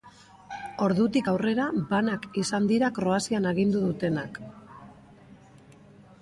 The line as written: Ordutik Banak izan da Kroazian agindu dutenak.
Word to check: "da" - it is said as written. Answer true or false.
false